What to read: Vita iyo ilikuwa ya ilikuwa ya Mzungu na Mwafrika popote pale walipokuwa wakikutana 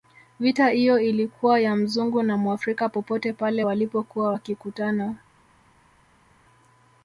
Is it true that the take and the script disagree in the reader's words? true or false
true